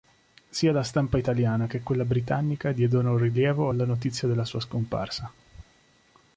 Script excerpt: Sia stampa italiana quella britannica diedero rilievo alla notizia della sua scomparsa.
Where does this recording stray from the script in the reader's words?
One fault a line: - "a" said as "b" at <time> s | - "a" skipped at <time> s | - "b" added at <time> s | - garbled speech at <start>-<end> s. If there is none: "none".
- "la" added at 0.7 s
- "che" added at 1.7 s